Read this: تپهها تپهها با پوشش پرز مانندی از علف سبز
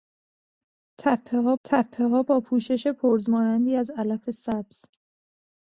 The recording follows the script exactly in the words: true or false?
true